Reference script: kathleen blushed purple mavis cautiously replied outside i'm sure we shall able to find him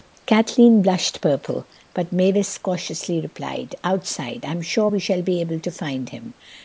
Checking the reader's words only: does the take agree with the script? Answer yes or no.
no